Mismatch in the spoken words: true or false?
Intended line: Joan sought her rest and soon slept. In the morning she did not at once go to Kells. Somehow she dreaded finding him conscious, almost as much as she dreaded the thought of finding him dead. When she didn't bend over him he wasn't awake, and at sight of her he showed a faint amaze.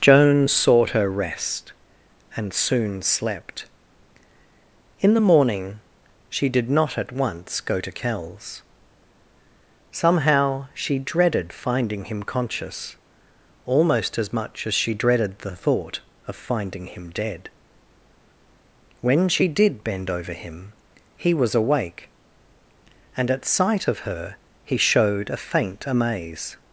true